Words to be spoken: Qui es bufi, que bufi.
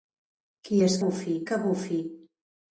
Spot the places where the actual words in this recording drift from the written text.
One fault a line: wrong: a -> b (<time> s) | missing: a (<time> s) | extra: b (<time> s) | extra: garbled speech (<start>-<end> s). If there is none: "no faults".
no faults